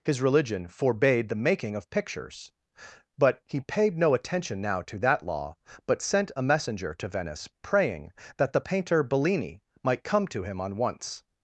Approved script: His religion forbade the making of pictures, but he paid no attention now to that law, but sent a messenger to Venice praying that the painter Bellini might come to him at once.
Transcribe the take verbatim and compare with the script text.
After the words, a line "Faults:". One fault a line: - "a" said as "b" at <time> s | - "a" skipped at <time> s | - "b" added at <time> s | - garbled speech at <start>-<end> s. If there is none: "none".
His religion forbade the making of pictures, but he paid no attention now to that law, but sent a messenger to Venice praying that the painter Bellini might come to him on once.
Faults:
- "at" said as "on" at 10.6 s